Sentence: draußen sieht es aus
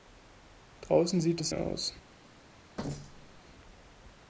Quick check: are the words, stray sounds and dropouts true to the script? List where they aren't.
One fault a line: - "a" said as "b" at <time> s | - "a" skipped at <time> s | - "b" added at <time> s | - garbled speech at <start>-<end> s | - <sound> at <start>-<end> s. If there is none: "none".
- thud at 2.8-3.4 s